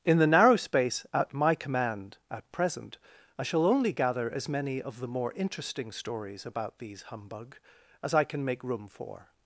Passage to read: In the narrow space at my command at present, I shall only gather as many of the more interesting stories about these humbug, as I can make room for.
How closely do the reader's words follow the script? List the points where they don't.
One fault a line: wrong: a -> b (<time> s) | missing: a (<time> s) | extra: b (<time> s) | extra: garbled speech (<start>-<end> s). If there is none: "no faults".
no faults